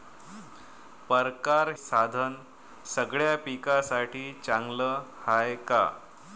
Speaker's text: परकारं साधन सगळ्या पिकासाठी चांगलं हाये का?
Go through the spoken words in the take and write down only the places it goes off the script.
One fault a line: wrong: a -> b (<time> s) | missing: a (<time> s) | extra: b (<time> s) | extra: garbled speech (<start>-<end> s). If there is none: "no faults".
no faults